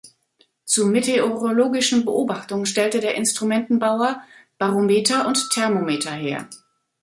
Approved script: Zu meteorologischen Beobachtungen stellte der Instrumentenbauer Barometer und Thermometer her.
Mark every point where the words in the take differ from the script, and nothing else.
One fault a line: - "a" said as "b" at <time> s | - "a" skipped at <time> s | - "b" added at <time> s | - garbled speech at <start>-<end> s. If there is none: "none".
none